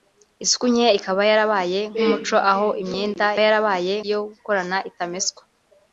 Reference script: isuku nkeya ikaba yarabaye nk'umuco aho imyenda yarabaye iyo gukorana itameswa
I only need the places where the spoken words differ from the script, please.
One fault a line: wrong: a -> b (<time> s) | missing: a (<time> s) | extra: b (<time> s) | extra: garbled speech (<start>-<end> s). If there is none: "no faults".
no faults